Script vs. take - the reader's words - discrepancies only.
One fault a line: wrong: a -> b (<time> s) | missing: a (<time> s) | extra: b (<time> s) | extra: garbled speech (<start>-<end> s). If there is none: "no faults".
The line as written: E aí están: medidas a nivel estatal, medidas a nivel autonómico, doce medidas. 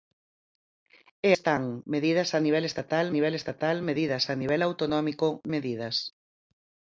missing: aí (1.3 s)
extra: nivel estatal (3.2 s)
missing: doce (5.3 s)